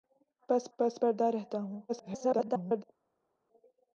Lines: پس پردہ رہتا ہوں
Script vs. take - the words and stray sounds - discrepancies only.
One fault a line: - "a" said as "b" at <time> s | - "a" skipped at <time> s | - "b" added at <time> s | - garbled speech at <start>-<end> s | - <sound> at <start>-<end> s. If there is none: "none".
- "پس" added at 0.8 s
- garbled speech at 1.9-2.8 s